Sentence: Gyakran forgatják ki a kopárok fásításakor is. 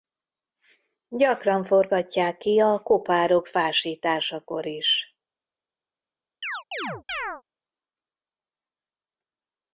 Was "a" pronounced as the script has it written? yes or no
yes